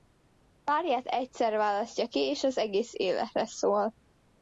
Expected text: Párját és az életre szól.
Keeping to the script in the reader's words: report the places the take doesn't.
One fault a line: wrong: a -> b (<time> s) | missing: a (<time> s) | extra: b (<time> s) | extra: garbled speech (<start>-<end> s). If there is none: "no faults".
extra: egyszer választja ki (1.1 s)
extra: egész (2.6 s)